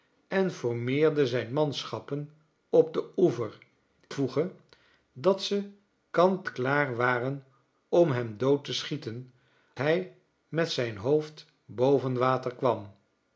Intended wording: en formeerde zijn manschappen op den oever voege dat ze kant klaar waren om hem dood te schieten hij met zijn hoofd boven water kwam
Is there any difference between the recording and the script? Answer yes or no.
no